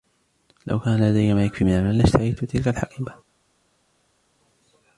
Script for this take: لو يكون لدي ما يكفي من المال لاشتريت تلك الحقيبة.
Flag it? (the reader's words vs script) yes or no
yes